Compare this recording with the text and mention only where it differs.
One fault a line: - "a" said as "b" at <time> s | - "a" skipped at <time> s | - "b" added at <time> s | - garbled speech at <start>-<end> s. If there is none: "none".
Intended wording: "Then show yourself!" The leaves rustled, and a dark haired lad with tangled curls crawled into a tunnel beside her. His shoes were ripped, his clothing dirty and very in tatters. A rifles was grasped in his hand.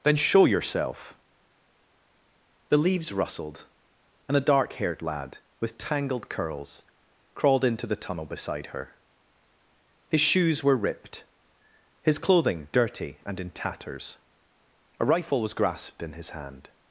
- "a" said as "the" at 7.8 s
- "very" skipped at 13.4 s
- "rifles" said as "rifle" at 15.1 s